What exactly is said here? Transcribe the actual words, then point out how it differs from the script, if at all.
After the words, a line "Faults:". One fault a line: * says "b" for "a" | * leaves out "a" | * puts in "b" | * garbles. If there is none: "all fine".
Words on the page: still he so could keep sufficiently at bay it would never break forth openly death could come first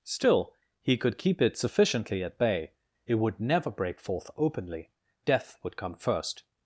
still he could keep it sufficiently at bay it would never break forth openly death would come first
Faults:
* leaves out "so"
* puts in "it"
* says "would" for "could"